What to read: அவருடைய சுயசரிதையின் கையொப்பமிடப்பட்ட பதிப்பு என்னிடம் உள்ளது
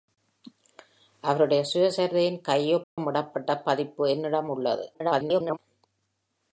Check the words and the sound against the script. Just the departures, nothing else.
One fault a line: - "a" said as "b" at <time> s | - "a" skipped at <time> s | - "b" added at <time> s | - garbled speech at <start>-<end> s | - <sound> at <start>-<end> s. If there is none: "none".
- dropout at 2.8-3.0 s
- garbled speech at 4.9-5.6 s